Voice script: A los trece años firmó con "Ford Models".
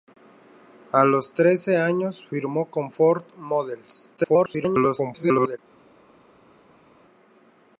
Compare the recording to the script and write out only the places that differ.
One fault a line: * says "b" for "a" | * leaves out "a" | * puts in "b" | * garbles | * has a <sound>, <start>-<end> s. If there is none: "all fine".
* garbles